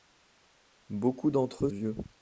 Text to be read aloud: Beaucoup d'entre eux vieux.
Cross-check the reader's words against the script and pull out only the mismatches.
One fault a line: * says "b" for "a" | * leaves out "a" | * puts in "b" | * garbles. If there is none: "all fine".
all fine